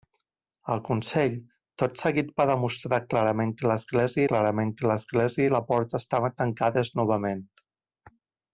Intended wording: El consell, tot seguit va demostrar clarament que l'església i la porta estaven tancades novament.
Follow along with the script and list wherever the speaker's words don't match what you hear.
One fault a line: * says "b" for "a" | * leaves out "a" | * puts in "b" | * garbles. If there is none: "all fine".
* puts in "clarament que l'església"